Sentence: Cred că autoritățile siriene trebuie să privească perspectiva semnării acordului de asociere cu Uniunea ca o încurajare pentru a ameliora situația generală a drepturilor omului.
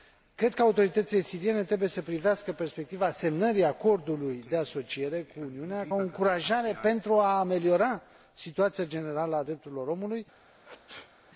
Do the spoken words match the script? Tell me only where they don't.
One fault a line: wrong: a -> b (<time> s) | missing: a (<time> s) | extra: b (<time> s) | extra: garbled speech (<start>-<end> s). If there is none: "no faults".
missing: ca (5.9 s)